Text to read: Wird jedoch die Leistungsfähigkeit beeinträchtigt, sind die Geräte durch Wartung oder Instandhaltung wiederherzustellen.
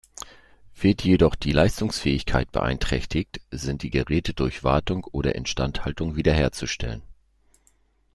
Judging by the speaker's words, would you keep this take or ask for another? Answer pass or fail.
pass